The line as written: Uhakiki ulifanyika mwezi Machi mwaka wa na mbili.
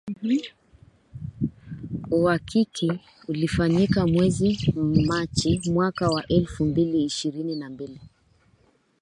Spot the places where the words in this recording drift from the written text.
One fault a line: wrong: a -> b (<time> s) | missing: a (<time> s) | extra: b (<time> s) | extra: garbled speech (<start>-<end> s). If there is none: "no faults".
extra: elfu mbili ishirini (6.3 s)